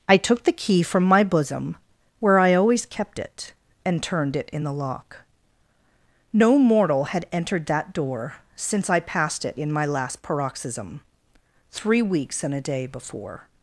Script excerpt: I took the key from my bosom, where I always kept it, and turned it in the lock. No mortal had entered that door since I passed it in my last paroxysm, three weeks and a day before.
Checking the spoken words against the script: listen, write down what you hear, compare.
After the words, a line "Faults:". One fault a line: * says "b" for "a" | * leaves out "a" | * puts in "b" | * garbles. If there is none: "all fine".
I took the key from my bosom, where I always kept it, and turned it in the lock. No mortal had entered that door since I passed it in my last paroxysm, three weeks and a day before.
Faults:
all fine